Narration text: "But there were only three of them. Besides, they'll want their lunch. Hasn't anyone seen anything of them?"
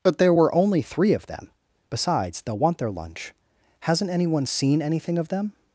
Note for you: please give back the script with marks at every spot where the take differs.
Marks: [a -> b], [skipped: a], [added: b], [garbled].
"But there were only three of them. Besides, they'll want their lunch. Hasn't anyone seen anything of them?"